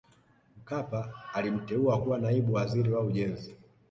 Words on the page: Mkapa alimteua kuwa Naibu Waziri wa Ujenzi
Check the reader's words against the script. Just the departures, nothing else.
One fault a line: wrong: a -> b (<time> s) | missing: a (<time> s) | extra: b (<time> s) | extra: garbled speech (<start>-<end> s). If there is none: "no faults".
no faults